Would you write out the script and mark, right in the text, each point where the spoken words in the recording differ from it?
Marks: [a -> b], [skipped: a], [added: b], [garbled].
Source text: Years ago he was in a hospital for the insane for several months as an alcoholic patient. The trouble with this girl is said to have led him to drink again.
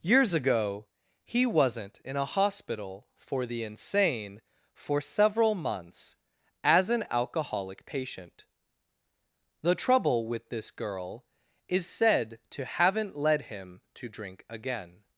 Years ago he [was -> wasn't] in a hospital for the insane for several months as an alcoholic patient. The trouble with this girl is said to [have -> haven't] led him to drink again.